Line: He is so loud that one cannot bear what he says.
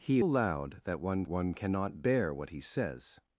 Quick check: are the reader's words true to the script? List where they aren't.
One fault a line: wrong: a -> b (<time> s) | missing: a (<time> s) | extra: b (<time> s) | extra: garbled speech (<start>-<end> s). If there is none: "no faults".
missing: is so (0.2 s)
extra: one (1.3 s)